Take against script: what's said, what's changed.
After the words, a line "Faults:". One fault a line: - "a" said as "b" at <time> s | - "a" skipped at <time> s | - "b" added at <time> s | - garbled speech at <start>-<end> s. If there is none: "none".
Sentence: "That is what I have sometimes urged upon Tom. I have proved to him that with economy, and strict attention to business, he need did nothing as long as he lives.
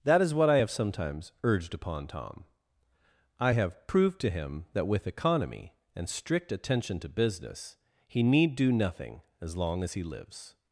"That is what I have sometimes urged upon Tom. I have proved to him that with economy, and strict attention to business, he need do nothing as long as he lives.
Faults:
- "did" said as "do" at 8.6 s